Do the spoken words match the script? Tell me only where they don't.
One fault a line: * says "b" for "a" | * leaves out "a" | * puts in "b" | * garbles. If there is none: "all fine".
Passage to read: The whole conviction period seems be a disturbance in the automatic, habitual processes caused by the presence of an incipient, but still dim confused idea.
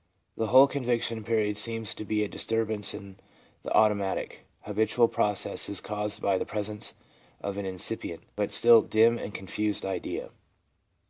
* puts in "to"
* puts in "and"